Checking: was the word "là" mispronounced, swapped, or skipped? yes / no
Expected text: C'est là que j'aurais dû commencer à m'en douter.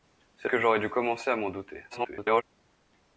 yes